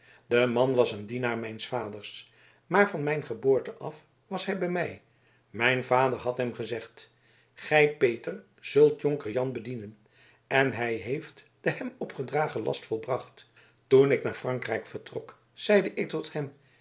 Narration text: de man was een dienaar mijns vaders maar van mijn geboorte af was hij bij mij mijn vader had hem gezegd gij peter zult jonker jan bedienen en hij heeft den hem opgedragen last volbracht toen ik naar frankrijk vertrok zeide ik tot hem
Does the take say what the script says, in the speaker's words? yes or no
yes